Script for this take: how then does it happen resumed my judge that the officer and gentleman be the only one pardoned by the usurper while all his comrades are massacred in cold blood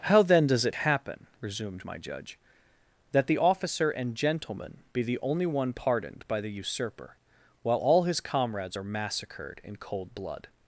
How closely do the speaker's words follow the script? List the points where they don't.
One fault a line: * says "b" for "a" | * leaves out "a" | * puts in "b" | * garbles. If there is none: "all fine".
all fine